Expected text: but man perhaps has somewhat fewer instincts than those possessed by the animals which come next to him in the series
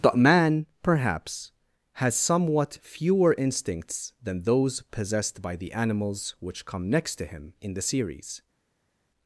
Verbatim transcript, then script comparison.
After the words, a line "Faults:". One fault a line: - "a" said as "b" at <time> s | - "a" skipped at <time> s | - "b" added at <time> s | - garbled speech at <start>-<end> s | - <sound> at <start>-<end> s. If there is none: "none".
but man perhaps has somewhat fewer instincts than those possessed by the animals which come next to him in the series
Faults:
none